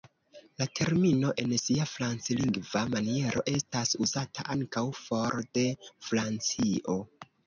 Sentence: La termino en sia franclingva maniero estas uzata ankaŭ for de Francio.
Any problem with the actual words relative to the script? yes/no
no